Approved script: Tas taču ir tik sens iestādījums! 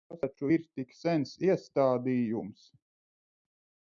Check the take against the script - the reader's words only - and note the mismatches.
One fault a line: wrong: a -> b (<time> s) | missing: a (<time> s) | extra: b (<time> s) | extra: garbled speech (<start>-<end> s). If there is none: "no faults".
no faults